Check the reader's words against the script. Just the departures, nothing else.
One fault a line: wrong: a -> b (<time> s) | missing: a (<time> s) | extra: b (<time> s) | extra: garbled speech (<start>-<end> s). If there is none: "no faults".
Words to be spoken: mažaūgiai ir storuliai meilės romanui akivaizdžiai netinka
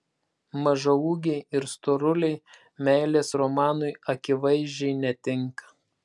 no faults